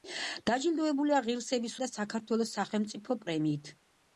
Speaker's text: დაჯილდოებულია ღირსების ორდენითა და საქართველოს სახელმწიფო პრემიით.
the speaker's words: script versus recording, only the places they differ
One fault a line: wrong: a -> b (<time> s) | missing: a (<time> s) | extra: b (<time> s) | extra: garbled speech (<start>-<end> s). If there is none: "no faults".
missing: ორდენითა (1.8 s)